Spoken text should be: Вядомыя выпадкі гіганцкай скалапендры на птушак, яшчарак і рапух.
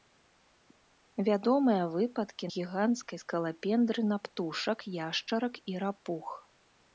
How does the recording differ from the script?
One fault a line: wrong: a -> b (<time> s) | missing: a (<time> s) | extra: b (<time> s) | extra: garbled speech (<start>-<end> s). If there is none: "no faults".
no faults